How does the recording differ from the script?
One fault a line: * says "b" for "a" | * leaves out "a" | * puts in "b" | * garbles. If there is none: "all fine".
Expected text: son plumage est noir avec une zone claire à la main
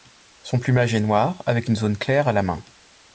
all fine